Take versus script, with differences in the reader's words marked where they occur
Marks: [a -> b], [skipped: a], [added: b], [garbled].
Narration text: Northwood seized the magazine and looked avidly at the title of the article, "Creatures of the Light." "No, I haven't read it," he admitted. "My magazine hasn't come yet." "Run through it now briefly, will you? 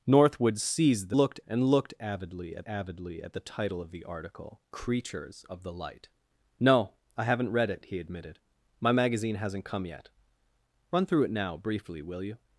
Northwood seized the [magazine -> looked] and looked avidly at [added: avidly at] the title of the article, "Creatures of the Light." "No, I haven't read it," he admitted. "My magazine hasn't come yet." "Run through it now briefly, will you?